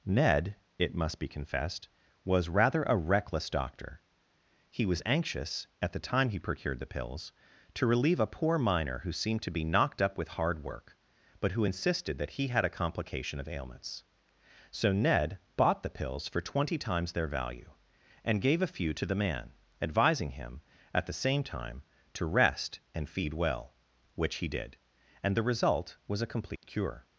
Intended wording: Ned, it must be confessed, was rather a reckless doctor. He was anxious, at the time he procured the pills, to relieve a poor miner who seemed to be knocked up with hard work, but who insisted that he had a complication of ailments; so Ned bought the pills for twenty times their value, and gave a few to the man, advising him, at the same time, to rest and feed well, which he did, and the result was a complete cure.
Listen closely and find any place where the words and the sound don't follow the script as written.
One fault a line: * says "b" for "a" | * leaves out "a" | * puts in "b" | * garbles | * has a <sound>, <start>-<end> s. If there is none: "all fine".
* has a dropout, 26.6-26.6 s